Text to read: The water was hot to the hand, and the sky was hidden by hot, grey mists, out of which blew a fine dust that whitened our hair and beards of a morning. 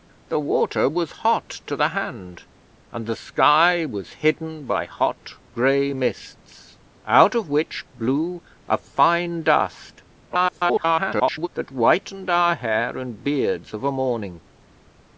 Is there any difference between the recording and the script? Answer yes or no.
yes